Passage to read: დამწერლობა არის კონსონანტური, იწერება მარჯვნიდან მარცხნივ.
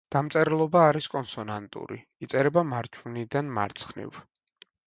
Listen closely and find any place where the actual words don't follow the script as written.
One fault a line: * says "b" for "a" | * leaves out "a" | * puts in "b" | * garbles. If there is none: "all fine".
all fine